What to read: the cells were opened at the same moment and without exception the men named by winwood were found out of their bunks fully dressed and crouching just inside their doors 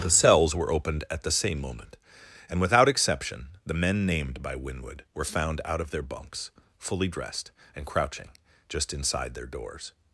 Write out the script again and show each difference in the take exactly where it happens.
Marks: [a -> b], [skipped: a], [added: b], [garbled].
the cells were opened at the same moment and without exception the men named by winwood were found out of their bunks fully dressed and crouching just inside their doors